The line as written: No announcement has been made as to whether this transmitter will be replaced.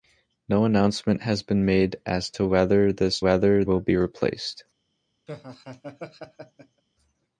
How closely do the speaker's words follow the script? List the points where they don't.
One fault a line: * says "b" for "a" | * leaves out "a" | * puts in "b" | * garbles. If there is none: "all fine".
* says "whether" for "transmitter"